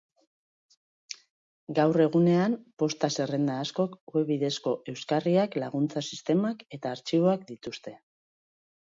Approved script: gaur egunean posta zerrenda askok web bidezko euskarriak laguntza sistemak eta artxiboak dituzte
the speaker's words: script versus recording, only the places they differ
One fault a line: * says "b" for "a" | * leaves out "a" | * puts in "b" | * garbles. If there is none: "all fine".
all fine